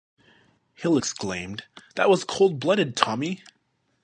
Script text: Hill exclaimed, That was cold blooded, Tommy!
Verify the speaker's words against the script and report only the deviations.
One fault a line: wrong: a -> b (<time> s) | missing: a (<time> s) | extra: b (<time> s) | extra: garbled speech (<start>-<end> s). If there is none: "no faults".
no faults